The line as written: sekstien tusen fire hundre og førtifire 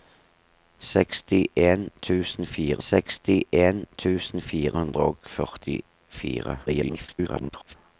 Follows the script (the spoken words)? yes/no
no